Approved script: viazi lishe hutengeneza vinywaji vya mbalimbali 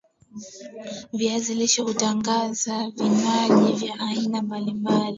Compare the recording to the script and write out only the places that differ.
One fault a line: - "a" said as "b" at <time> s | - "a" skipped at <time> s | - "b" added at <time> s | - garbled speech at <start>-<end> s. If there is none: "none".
- "aina" added at 4.0 s